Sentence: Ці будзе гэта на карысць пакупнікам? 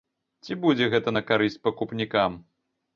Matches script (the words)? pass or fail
pass